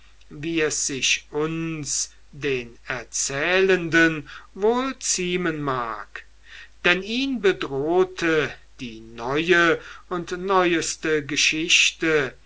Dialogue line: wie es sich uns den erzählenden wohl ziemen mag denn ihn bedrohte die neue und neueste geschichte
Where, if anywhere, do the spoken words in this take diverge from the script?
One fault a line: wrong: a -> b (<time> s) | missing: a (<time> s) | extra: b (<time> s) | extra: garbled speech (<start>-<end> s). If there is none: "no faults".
no faults